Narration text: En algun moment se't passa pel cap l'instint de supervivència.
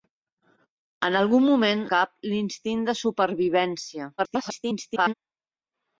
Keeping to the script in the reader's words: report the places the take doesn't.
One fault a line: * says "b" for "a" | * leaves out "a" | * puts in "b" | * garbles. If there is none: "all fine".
* leaves out "se't passa pel"
* garbles